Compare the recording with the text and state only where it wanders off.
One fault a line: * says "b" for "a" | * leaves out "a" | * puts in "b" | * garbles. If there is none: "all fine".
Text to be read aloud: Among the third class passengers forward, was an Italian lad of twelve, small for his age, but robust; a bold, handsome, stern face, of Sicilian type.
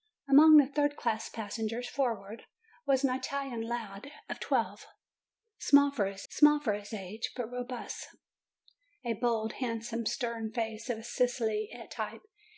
* puts in "small for his"